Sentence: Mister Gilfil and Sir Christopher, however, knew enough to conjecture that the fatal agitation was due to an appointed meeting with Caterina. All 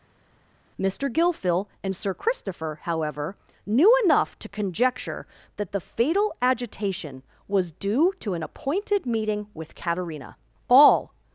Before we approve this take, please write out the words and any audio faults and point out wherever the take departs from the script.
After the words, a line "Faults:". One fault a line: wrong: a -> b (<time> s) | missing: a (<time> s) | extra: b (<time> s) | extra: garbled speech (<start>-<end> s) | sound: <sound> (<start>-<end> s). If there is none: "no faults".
Mister Gilfil and Sir Christopher, however, knew enough to conjecture that the fatal agitation was due to an appointed meeting with Caterina. All
Faults:
no faults